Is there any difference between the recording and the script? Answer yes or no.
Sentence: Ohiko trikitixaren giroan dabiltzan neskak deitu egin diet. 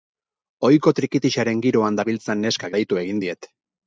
no